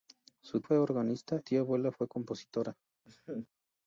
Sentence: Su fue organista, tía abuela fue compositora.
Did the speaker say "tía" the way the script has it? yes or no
yes